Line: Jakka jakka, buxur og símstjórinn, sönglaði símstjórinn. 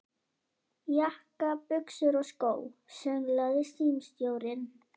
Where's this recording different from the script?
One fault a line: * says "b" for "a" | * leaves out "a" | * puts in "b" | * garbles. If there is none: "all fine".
* leaves out "jakka"
* says "skó" for "símstjórinn"